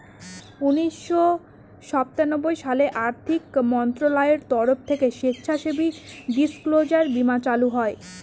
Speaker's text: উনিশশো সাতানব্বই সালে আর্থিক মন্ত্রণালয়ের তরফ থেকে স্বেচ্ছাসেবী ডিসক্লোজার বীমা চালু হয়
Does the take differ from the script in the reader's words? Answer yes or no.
no